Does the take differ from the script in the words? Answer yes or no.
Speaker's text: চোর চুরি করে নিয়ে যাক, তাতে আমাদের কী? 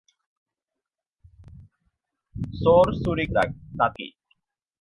yes